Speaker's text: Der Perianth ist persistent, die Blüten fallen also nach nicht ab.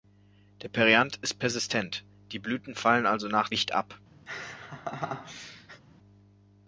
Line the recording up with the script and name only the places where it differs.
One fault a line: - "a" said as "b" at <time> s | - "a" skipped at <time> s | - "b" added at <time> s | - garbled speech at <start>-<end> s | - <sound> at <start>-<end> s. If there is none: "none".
- laugh at 4.3-5.8 s